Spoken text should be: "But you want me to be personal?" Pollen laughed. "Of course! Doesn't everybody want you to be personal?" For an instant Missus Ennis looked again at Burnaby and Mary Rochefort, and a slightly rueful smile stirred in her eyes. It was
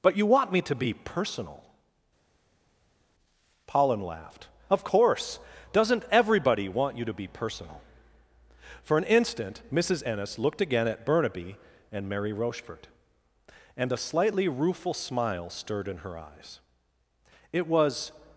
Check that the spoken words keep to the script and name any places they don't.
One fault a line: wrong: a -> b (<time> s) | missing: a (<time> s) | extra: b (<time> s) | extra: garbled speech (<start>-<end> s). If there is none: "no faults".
no faults